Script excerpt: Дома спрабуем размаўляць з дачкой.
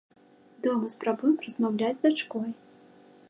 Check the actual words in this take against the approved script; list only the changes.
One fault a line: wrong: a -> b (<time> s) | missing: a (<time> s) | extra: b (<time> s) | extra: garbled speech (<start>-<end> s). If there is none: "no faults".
no faults